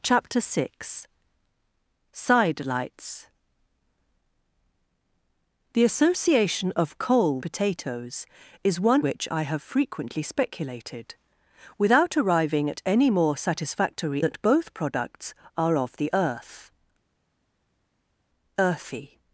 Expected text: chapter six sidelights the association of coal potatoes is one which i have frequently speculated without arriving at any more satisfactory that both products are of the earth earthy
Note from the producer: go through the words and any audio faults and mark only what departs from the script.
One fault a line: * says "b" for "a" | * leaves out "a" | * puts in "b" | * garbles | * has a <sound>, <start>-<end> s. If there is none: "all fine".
all fine